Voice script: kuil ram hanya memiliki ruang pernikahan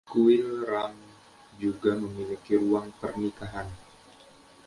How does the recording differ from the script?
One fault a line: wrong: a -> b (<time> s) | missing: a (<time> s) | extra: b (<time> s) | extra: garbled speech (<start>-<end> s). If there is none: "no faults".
wrong: hanya -> juga (1.6 s)